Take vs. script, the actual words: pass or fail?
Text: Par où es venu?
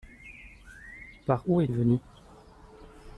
pass